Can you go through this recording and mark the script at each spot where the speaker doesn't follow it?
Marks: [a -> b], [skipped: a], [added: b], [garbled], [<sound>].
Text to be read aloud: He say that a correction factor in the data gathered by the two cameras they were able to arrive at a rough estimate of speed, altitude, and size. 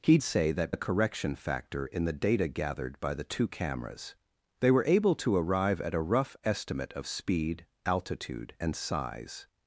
He say that a correction factor in the data gathered by the two cameras they were able to arrive at a rough estimate of speed, altitude, and size.